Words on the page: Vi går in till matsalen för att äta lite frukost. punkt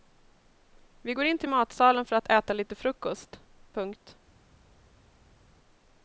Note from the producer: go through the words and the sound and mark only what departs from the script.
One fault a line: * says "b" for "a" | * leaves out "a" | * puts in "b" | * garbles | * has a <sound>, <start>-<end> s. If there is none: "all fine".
all fine